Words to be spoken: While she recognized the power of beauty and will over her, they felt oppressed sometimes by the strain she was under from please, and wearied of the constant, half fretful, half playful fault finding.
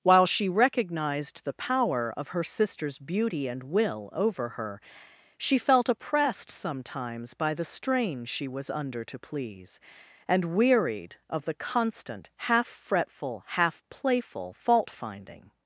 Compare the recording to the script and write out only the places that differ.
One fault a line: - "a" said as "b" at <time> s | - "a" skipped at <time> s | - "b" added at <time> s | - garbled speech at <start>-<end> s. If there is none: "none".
- "her sister's" added at 2.3 s
- "they" said as "she" at 5.4 s
- "from" said as "to" at 9.0 s